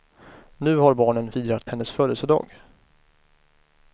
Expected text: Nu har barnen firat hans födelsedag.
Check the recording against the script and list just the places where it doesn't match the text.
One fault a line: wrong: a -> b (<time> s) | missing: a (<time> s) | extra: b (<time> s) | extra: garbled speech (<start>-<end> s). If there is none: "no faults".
wrong: hans -> hennes (1.7 s)